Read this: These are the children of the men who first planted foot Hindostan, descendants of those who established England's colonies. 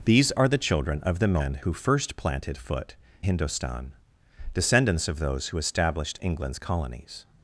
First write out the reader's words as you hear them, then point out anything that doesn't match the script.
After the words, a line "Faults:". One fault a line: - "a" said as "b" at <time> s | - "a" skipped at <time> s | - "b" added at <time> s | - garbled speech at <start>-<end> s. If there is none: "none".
These are the children of the men who first planted foot Hindostan, descendants of those who established England's colonies.
Faults:
none